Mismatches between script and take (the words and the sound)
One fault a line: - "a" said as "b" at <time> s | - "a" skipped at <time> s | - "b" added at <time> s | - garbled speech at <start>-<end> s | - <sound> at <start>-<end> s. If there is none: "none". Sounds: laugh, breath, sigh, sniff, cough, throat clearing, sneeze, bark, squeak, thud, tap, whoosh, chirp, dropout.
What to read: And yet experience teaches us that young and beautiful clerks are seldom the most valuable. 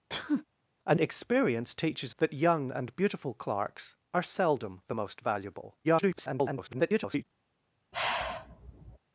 - sneeze at 0.1-0.4 s
- "yet" skipped at 1.0 s
- "us" skipped at 2.1 s
- garbled speech at 5.8-7.2 s
- sigh at 7.9-9.0 s